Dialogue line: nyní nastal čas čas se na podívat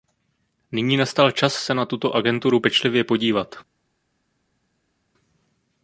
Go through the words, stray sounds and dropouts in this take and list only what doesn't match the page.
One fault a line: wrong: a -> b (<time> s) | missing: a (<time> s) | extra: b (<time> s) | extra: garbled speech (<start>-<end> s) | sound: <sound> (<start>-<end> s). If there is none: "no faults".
missing: čas (1.5 s)
extra: tuto agenturu pečlivě (1.9 s)